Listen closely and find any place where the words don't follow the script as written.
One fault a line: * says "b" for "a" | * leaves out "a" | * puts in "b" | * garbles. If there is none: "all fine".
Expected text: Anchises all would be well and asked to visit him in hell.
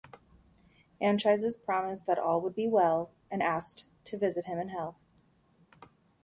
* puts in "promised that"